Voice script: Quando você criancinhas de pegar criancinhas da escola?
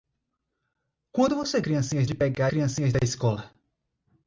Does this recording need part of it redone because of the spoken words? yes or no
no